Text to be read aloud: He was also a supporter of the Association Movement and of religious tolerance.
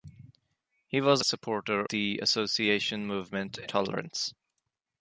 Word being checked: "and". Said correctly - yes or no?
no